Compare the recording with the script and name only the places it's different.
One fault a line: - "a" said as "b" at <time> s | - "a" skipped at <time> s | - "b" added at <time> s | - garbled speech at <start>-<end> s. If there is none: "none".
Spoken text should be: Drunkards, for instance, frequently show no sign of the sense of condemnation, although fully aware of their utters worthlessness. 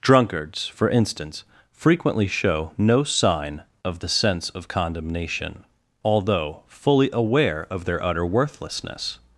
- "utters" said as "utter" at 8.0 s